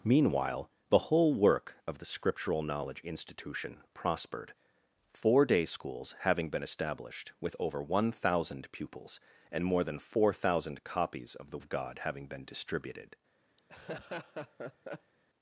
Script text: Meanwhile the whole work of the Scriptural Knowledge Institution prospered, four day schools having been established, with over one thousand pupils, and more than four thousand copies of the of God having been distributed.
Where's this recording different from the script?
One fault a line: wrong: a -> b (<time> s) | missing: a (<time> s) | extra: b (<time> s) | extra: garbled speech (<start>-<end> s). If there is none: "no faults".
no faults